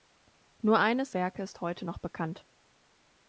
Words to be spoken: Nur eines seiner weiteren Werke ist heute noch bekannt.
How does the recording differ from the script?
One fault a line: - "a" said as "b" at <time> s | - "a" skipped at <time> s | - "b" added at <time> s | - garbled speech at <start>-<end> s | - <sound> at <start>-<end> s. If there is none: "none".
- "seiner weiteren" skipped at 1.1 s